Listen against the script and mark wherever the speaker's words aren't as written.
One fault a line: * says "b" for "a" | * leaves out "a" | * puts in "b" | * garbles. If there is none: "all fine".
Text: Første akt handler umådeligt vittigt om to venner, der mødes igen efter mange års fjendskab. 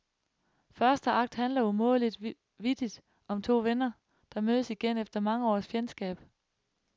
all fine